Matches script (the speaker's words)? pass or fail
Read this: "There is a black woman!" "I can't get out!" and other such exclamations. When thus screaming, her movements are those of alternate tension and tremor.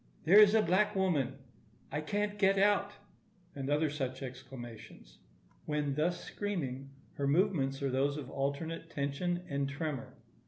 pass